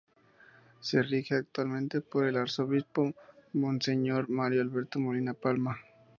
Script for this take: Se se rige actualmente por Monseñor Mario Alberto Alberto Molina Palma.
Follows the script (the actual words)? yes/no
no